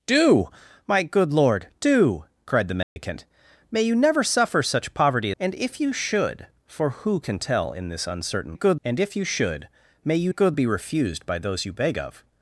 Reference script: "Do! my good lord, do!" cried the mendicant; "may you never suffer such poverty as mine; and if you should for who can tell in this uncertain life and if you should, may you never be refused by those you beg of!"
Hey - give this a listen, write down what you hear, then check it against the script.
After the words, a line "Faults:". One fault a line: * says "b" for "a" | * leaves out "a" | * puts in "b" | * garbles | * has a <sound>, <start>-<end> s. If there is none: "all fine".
"Do! my good lord, do!" cried the mendicant; "may you never suffer such poverty; and if you should for who can tell in this uncertain good and if you should, may you good be refused by those you beg of!"
Faults:
* has a dropout, 2.8-3.0 s
* leaves out "as mine"
* says "good" for "life"
* says "good" for "never"